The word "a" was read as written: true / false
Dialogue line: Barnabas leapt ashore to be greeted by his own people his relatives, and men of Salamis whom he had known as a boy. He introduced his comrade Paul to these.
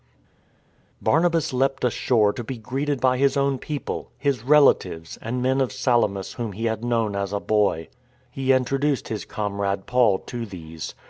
true